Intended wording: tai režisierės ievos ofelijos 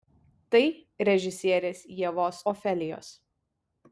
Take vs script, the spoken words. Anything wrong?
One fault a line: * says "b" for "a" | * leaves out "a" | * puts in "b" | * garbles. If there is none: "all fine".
all fine